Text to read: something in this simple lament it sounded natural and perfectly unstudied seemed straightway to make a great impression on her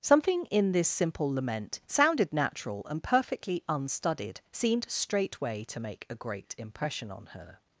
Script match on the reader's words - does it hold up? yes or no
no